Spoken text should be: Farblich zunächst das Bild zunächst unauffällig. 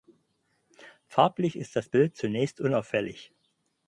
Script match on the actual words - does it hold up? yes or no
no